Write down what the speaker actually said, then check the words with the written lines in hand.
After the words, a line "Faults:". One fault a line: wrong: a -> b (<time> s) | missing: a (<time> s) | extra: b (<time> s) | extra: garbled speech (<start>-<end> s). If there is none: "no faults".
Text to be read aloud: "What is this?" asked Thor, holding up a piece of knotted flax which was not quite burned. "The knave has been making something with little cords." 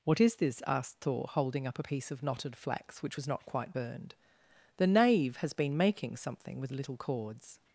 "What is this?" asked Thor, holding up a piece of knotted flax which was not quite burned. "The knave has been making something with little cords."
Faults:
no faults